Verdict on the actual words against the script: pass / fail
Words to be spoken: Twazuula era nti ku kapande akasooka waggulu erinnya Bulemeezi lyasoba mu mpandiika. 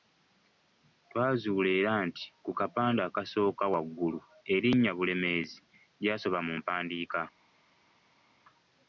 pass